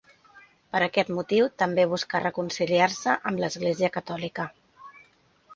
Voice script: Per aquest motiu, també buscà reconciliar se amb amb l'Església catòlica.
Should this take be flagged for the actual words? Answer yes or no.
yes